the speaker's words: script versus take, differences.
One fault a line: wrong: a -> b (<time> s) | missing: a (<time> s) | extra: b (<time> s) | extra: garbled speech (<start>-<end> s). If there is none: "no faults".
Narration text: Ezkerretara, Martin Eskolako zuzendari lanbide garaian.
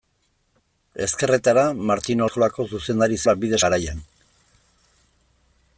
no faults